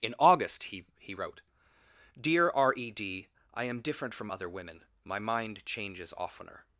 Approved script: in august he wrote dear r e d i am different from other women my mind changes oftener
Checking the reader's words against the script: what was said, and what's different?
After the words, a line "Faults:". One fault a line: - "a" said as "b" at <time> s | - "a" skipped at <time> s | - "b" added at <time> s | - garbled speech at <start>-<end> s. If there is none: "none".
in august he he wrote dear r e d i am different from other women my mind changes oftener
Faults:
- "he" added at 1.0 s